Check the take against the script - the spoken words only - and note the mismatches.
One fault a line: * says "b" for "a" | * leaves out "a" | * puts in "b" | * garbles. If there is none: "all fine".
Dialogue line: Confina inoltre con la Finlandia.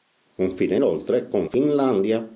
* leaves out "la"